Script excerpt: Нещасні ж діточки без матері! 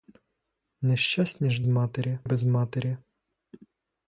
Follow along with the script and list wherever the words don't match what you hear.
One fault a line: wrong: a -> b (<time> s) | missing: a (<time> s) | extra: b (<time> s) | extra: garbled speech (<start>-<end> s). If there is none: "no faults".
wrong: діточки -> матері (1.7 s)